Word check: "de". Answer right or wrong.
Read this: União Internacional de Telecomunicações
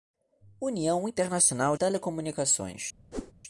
wrong